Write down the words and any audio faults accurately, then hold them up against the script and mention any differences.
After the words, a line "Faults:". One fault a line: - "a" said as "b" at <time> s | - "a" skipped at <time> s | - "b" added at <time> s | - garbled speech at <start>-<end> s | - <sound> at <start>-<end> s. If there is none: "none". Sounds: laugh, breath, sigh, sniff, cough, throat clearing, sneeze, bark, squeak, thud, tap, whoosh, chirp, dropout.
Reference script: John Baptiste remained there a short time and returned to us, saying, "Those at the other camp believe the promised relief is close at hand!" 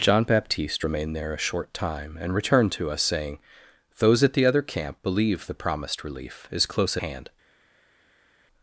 John Baptiste remained there a short time and returned to us, saying, "Those at the other camp believe the promised relief is close hand!"
Faults:
- "at" skipped at 7.0 s